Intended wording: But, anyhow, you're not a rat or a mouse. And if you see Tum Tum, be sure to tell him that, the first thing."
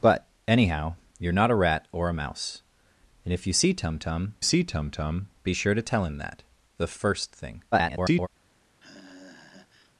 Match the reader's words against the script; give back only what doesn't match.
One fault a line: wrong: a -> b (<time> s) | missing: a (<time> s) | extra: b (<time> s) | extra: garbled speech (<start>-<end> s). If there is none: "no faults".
extra: see Tum Tum (4.4 s)
extra: garbled speech (7.7-8.3 s)